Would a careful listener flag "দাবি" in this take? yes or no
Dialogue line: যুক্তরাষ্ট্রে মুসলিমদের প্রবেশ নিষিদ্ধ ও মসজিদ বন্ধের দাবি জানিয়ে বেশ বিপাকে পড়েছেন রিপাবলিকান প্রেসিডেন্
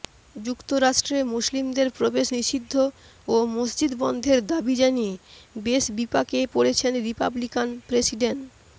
no